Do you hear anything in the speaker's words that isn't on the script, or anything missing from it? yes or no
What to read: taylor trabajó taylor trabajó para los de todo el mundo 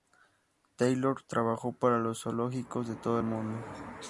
yes